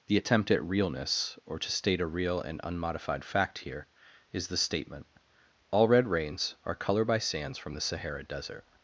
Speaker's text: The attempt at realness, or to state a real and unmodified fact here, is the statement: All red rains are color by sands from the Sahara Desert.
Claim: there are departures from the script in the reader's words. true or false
false